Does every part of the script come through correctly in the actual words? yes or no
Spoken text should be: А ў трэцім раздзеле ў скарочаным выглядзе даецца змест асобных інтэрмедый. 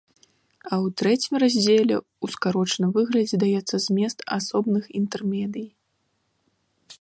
yes